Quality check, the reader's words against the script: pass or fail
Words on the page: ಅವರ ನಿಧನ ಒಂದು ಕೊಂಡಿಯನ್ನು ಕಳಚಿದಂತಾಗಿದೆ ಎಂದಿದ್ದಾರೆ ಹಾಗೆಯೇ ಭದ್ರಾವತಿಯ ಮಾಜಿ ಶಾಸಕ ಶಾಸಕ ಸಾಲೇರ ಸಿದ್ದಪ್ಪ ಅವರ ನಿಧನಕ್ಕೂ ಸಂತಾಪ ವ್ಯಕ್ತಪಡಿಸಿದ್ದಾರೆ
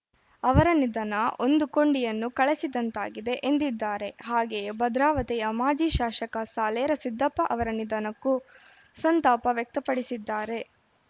fail